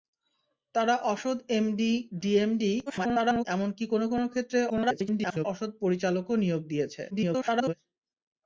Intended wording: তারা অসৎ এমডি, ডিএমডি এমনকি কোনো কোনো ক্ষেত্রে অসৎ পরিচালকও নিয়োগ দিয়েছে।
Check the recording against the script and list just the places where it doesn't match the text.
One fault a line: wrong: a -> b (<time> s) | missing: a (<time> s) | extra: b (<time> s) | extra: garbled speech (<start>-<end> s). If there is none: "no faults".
extra: garbled speech (2.9-3.5 s)
extra: garbled speech (4.7-5.5 s)
extra: garbled speech (7.1-7.7 s)